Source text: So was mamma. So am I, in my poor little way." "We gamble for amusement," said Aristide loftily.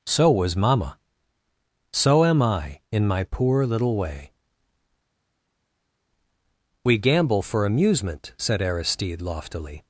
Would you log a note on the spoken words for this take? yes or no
no